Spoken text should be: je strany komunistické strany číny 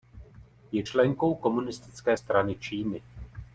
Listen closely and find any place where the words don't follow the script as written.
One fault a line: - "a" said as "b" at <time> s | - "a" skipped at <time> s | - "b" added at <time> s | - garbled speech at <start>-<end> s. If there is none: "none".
- "strany" said as "členkou" at 0.8 s